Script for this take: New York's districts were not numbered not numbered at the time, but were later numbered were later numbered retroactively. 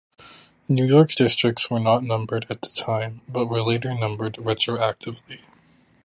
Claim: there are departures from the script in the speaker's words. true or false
true